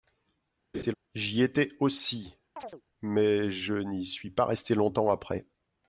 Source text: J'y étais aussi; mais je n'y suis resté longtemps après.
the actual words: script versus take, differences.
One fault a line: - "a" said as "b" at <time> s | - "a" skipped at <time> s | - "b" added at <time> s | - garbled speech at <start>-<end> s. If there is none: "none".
- "pas" added at 4.3 s